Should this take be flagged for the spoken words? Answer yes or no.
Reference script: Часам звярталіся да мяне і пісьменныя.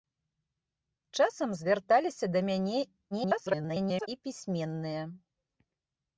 yes